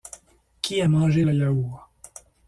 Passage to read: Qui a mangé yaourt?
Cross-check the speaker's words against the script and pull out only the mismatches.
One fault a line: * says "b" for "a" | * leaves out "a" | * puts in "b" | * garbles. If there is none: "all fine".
* puts in "le"